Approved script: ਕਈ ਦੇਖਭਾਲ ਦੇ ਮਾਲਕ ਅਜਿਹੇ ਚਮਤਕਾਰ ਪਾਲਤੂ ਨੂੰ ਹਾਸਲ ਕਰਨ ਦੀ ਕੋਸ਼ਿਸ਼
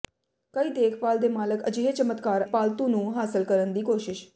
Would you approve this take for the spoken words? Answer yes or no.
yes